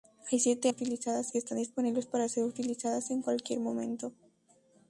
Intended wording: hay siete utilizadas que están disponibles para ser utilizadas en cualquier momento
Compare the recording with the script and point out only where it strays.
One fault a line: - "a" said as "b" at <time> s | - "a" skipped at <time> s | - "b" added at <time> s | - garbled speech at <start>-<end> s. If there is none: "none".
none